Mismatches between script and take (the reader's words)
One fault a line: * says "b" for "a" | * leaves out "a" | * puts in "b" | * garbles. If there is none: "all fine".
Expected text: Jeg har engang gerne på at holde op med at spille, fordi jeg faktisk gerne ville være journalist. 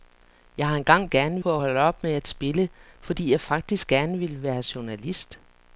all fine